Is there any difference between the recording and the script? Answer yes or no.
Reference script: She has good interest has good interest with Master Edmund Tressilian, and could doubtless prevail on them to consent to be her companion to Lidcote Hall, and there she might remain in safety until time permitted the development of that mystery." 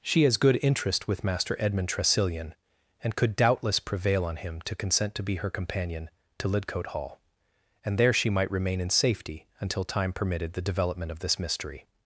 yes